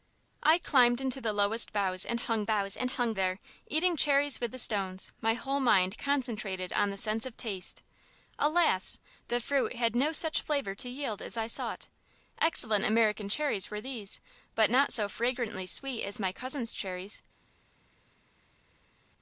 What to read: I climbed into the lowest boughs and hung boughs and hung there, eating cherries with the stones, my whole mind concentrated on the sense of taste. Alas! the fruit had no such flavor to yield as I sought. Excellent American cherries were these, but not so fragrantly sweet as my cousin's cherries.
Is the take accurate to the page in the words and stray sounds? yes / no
yes